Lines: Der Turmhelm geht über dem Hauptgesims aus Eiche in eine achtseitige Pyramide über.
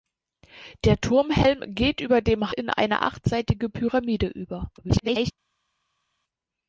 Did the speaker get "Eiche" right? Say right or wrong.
wrong